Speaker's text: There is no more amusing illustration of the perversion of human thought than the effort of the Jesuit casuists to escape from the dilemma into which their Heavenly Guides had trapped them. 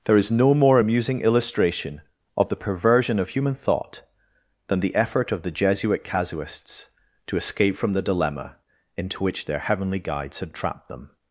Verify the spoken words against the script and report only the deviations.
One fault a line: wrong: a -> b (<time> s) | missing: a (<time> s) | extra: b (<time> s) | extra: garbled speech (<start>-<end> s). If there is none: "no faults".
no faults